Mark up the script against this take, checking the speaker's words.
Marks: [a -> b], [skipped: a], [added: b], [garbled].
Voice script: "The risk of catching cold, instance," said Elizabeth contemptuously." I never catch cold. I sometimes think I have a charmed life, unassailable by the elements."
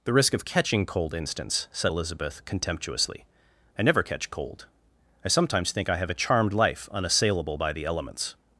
"The risk of catching cold, instance," said Elizabeth contemptuously." I never catch cold. I sometimes think I have a charmed life, unassailable by the elements."